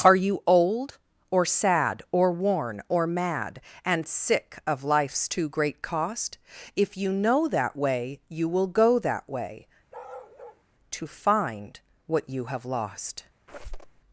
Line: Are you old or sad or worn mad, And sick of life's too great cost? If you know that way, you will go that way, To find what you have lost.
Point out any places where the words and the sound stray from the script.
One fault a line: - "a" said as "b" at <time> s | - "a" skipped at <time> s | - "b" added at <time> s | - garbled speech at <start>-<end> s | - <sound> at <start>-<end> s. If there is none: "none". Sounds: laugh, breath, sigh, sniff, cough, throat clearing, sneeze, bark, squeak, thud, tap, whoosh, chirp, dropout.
- "or" added at 2.9 s
- bark at 9.9-10.6 s
- squeak at 13.5-14.0 s